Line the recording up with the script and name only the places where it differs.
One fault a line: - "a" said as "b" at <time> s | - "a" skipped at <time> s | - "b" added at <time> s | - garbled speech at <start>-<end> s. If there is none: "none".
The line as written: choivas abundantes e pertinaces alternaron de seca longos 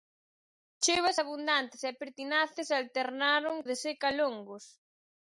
none